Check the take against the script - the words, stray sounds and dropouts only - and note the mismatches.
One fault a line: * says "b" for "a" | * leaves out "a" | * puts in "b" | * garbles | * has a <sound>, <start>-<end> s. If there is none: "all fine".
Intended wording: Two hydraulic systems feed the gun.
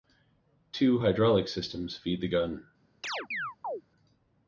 * has a chirp, 3.0-3.8 s